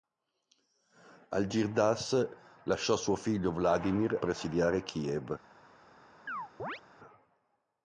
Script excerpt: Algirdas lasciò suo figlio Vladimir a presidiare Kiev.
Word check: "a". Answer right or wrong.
wrong